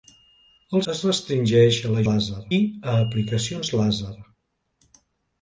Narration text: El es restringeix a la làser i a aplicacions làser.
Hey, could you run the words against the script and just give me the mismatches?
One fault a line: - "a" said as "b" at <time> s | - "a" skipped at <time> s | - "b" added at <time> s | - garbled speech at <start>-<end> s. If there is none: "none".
none